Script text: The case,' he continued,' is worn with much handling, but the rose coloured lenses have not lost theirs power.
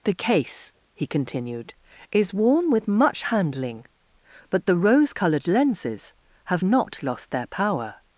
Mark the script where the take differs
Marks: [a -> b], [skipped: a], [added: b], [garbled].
The case,' he continued,' is worn with much handling, but the rose coloured lenses have not lost [theirs -> their] power.